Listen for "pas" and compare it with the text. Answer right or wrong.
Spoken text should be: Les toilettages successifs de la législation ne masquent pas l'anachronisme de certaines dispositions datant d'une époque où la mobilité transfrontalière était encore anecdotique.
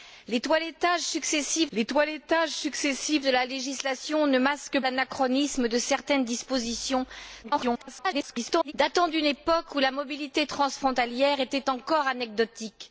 wrong